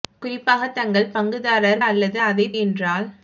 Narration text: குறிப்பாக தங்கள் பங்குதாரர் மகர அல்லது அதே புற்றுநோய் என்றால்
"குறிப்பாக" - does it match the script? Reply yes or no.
yes